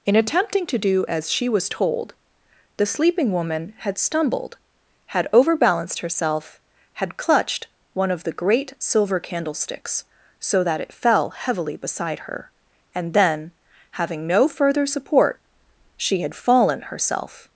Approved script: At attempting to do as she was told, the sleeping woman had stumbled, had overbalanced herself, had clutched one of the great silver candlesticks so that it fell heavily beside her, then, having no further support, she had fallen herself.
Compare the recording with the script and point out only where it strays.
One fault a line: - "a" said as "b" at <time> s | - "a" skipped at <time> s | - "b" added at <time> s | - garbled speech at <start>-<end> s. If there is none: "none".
- "At" said as "In" at 0.0 s
- "and" added at 12.9 s